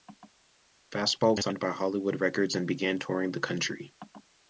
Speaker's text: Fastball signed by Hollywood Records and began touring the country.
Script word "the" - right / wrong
right